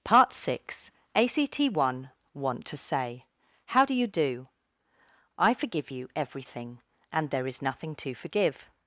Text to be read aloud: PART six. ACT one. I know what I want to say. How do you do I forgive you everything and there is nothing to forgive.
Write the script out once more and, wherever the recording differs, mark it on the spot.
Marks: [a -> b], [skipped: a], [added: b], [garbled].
PART six. ACT one. [skipped: I know what I] want to say. How do you do I forgive you everything and there is nothing to forgive.